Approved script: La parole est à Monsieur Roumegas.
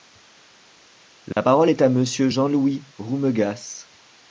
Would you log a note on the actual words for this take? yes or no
yes